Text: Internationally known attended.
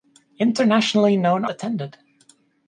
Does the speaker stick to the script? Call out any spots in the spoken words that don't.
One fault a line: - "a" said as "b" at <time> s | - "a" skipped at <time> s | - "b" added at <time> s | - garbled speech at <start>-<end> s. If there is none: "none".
none